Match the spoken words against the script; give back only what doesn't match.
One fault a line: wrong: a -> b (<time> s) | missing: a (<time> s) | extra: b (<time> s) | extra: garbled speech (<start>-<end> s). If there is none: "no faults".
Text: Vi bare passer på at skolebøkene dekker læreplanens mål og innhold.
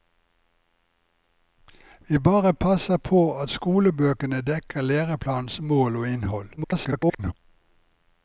extra: garbled speech (6.6-7.3 s)